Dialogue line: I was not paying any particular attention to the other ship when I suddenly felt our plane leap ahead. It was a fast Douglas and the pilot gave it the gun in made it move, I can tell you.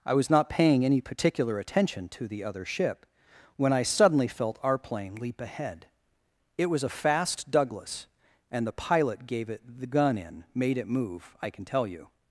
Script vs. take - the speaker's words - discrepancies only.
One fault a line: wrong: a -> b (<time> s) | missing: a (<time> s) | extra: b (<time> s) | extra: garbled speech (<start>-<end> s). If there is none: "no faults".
no faults